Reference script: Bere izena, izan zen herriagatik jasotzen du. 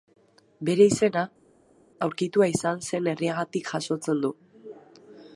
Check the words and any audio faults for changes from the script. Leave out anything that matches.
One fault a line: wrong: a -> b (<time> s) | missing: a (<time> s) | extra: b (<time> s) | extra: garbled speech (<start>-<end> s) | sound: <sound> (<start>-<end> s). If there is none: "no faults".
extra: aurkitua (2.1 s)